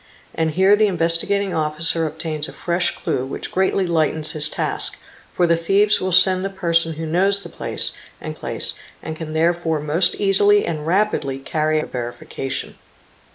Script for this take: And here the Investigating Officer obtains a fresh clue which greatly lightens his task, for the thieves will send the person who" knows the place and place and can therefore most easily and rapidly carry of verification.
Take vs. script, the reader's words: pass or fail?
pass